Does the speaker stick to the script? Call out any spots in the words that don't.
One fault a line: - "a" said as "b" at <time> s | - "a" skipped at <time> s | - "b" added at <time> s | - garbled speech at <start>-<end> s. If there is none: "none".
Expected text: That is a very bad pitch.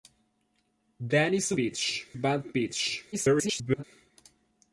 - "very" said as "pitch" at 1.6 s
- garbled speech at 3.1-3.8 s